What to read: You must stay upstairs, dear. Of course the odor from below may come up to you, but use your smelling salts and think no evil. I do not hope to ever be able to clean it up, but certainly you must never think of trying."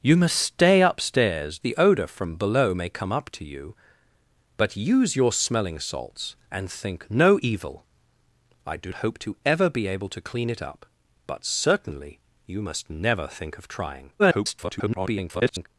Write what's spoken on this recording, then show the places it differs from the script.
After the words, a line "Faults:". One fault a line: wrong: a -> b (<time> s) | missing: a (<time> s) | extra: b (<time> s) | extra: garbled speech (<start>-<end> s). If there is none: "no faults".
You must stay upstairs, the odor from below may come up to you, but use your smelling salts and think no evil. I do hope to ever be able to clean it up, but certainly you must never think of trying." [garbled]
Faults:
missing: dear Of course (1.6 s)
missing: not (8.9 s)
extra: garbled speech (14.2-15.7 s)